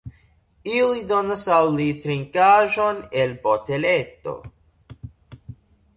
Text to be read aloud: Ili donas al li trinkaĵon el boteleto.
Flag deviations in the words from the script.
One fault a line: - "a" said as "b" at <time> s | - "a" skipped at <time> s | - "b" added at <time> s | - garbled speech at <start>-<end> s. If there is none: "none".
none